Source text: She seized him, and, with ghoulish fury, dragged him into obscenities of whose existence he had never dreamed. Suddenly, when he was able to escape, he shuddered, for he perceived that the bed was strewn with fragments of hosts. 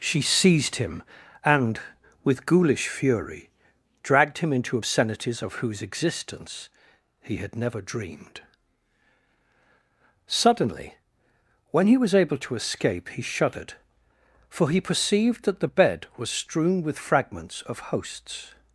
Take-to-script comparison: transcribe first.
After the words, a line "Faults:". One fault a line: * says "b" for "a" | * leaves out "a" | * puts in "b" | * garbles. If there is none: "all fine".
She seized him, and, with ghoulish fury, dragged him into obscenities of whose existence he had never dreamed. Suddenly, when he was able to escape, he shuddered, for he perceived that the bed was strewn with fragments of hosts.
Faults:
all fine